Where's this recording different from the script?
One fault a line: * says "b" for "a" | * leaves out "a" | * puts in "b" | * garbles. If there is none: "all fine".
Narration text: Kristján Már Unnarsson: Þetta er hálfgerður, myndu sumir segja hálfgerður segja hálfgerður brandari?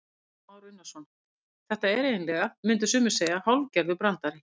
* says "eiginlega" for "hálfgerður"
* leaves out "segja hálfgerður"